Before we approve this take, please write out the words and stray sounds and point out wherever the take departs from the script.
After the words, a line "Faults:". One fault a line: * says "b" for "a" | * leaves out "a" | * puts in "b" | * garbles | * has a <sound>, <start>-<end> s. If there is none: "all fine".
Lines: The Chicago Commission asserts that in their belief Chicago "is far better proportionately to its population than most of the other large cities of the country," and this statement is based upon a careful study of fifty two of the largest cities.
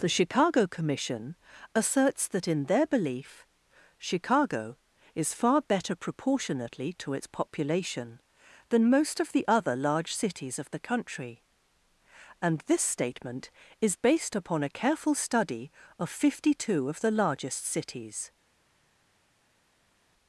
The Chicago Commission asserts that in their belief Chicago "is far better proportionately to its population than most of the other large cities of the country," and this statement is based upon a careful study of fifty two of the largest cities.
Faults:
all fine